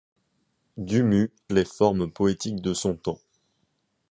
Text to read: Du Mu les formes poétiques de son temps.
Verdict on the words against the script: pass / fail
pass